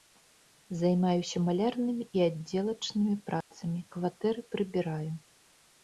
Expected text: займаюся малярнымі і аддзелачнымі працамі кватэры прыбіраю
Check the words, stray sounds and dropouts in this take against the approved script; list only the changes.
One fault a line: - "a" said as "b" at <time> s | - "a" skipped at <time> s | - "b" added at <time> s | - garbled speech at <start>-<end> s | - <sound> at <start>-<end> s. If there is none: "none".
- dropout at 3.4-3.5 s